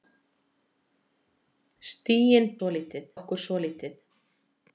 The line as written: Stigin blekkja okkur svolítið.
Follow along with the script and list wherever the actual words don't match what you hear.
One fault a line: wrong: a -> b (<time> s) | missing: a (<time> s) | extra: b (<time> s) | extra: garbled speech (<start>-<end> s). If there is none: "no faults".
wrong: blekkja -> svolítið (2.6 s)